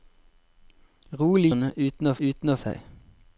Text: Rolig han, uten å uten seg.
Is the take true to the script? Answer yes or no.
yes